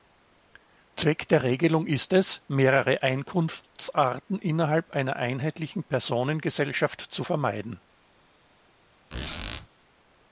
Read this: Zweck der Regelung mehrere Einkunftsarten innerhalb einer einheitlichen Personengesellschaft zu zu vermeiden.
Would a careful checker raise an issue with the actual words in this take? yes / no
yes